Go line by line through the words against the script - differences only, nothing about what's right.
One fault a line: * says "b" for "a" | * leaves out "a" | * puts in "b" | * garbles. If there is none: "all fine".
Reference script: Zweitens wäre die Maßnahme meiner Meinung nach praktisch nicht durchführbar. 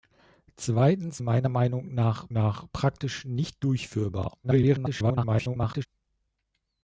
* leaves out "wäre die Maßnahme"
* puts in "nach"
* garbles